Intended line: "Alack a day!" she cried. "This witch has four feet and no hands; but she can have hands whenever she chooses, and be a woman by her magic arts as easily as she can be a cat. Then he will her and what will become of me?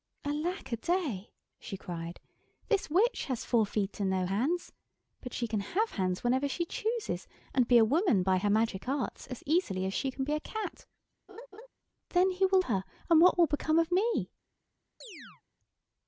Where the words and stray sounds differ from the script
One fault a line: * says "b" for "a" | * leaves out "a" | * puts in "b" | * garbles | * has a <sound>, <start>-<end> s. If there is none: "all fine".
* has a laugh, 11.3-11.7 s
* has a chirp, 15.0-15.4 s